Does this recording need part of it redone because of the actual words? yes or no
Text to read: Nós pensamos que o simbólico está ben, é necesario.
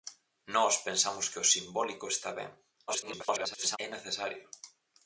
yes